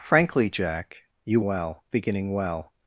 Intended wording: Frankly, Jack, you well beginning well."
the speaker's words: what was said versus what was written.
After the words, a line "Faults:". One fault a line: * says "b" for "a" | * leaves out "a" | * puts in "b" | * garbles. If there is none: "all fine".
Frankly, Jack, you well beginning well."
Faults:
all fine